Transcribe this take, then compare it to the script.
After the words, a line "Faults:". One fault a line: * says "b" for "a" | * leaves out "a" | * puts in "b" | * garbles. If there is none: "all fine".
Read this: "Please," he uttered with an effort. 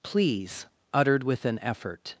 "Please," uttered with an effort.
Faults:
* leaves out "he"